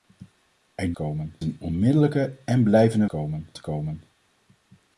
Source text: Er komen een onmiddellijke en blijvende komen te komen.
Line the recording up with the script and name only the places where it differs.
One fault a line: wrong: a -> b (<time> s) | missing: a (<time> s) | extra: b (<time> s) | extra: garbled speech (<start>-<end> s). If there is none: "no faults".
no faults